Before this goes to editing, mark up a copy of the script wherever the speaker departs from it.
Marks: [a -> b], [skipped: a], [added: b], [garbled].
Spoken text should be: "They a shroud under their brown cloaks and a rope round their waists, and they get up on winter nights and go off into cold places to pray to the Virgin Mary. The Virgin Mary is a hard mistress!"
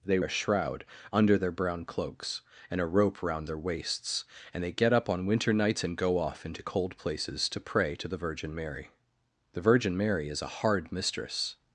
"They a shroud under their brown cloaks and a rope round their waists, and they get up on winter nights and go off into cold places to pray to the Virgin Mary. The Virgin Mary is a hard mistress!"